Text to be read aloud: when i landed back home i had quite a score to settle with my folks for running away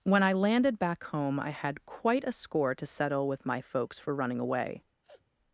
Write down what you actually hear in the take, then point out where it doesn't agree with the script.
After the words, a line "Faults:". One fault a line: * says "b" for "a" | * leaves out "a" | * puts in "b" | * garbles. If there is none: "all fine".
when i landed back home i had quite a score to settle with my folks for running away
Faults:
all fine